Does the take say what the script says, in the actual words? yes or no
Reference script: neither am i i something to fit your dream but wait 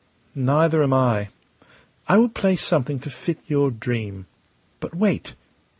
no